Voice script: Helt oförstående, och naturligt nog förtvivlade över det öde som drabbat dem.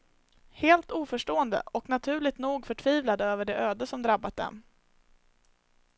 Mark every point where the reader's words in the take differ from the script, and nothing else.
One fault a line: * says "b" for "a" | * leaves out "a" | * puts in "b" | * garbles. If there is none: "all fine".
all fine